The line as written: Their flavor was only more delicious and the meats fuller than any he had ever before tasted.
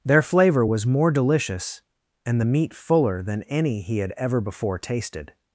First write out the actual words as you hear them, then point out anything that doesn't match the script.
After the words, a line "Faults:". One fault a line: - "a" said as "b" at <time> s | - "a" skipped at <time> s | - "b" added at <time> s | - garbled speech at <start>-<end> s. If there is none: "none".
Their flavor was more delicious and the meat fuller than any he had ever before tasted.
Faults:
- "only" skipped at 0.9 s
- "meats" said as "meat" at 2.4 s